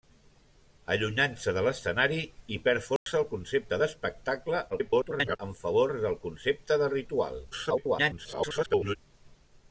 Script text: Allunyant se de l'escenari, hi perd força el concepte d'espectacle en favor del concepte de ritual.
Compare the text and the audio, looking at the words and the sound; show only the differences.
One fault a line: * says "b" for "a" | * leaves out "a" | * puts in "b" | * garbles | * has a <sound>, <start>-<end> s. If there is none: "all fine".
* has a dropout, 3.0-3.1 s
* garbles
* garbles